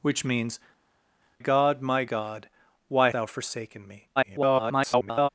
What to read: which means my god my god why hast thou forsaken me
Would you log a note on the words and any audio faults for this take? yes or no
yes